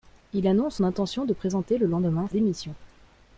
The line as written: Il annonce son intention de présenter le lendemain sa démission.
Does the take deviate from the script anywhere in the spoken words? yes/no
yes